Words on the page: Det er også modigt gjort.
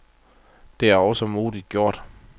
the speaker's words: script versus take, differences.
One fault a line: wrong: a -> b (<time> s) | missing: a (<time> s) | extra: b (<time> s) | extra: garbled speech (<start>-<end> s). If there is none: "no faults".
no faults